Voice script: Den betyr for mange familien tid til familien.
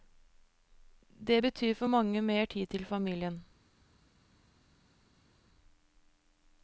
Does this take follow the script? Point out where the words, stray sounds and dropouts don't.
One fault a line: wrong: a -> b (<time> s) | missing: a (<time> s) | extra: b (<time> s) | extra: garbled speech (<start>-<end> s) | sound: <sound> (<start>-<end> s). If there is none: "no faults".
wrong: Den -> Det (1.3 s)
wrong: familien -> mer (2.2 s)